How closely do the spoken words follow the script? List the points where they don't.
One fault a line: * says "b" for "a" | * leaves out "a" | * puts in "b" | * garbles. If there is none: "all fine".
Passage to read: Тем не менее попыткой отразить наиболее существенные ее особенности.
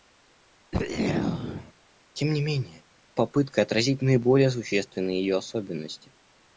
all fine